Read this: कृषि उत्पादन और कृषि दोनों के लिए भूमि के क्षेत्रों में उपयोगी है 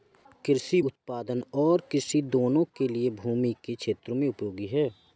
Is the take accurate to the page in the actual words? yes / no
yes